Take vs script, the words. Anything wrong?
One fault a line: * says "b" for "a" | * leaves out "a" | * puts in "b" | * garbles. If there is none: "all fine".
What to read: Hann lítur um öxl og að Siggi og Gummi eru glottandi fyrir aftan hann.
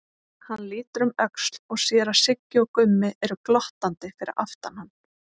* puts in "sér"